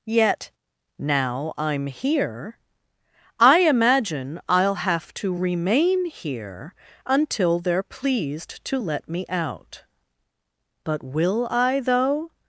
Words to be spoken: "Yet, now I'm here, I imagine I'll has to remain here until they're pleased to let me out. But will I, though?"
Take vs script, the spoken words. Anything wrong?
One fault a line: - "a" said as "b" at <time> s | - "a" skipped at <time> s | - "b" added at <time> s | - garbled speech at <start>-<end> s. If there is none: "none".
- "has" said as "have" at 4.8 s